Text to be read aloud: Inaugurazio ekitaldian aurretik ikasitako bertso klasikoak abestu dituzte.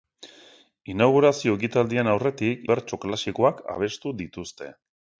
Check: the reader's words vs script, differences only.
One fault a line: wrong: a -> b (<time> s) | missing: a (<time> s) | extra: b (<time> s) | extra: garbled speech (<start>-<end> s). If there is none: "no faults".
missing: ikasitako (2.6 s)